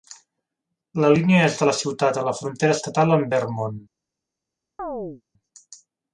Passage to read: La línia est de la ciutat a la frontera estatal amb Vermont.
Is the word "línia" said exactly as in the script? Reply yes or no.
yes